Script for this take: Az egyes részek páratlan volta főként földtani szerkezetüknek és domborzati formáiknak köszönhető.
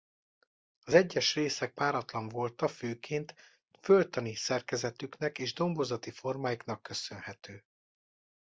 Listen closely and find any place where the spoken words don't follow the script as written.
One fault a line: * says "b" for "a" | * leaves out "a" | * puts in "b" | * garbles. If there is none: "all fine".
all fine